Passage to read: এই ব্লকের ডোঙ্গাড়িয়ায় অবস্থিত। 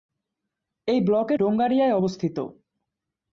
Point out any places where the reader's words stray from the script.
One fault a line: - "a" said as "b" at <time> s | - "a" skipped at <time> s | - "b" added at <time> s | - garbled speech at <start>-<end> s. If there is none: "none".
none